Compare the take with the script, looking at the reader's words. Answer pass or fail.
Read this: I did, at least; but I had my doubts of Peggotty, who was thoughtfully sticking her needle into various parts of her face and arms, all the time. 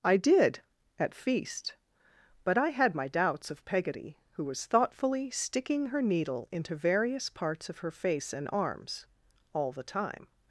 fail